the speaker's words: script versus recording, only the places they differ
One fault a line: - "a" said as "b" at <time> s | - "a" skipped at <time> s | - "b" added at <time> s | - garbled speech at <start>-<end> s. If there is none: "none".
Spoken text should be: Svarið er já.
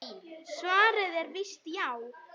- "víst" added at 1.4 s